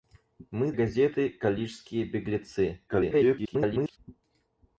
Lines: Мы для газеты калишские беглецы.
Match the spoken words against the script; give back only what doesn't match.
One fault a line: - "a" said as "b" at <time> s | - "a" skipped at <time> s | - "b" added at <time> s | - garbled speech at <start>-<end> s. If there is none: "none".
- "для" skipped at 0.7 s
- garbled speech at 2.9-4.0 s